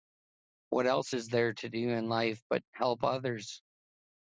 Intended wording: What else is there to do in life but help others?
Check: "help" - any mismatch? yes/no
no